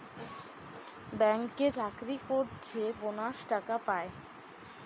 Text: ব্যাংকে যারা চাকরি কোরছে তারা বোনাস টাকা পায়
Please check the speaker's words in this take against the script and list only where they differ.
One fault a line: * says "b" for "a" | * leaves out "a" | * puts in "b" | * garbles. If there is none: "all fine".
* leaves out "যারা"
* leaves out "তারা"